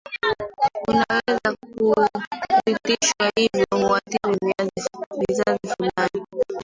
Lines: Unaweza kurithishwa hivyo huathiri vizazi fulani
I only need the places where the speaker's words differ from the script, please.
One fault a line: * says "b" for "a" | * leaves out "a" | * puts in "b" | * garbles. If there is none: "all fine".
all fine